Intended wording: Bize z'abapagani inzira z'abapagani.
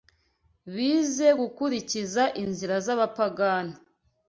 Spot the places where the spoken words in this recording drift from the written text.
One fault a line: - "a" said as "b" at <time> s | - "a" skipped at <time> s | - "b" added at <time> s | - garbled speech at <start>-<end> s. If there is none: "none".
- "z'abapagani" said as "gukurikiza" at 1.4 s